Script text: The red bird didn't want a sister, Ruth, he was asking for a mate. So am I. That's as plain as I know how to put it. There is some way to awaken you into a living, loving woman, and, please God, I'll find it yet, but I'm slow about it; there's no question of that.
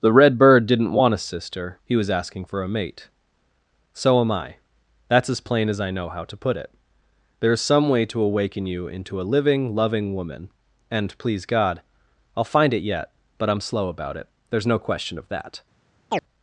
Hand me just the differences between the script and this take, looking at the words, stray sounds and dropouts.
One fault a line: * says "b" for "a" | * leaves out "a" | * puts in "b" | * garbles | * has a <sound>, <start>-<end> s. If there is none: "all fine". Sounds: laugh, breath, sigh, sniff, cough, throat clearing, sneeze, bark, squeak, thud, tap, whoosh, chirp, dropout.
* leaves out "Ruth"
* has a chirp, 16.1-16.2 s